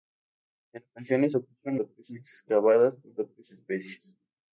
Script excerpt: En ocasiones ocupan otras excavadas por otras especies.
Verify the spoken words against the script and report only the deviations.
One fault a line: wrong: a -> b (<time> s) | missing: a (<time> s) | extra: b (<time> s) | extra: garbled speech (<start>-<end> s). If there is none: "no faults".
no faults